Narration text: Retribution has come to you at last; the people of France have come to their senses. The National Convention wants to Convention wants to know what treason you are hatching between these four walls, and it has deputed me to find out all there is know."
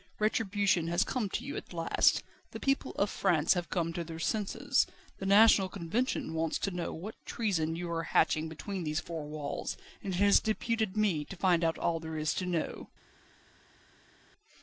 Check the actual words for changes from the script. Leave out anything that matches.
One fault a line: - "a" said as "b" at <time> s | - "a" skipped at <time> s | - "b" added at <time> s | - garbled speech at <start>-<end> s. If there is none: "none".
- "Convention wants to" skipped at 6.7 s
- "to" added at 12.3 s